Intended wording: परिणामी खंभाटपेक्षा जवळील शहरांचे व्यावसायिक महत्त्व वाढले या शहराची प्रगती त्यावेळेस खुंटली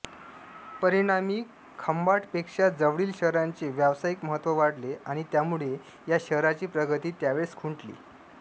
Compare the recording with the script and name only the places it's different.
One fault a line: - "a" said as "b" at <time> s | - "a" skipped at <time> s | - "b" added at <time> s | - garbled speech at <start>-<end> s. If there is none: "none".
- "आणि त्यामुळे" added at 5.0 s